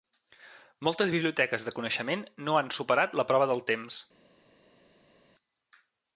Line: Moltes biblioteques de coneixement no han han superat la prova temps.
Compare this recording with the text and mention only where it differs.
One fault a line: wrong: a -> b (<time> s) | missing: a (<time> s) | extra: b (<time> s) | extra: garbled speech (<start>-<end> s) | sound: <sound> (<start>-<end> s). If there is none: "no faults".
missing: han (2.7 s)
extra: del (3.5 s)